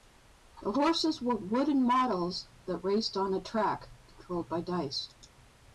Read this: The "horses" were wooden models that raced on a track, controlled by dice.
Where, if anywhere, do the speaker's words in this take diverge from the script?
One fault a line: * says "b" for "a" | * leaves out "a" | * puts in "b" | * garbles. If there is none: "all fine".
all fine